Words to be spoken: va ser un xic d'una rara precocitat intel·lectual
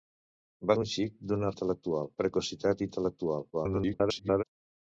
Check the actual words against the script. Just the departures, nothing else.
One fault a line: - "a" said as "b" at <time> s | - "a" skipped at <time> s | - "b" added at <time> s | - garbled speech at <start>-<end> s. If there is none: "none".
- "ser" skipped at 0.8 s
- "rara" said as "intel·lectual" at 1.5 s
- garbled speech at 3.5-4.4 s